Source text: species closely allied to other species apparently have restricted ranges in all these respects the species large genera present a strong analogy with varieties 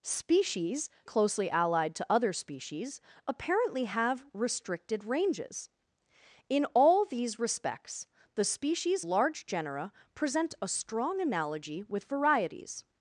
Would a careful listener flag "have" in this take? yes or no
no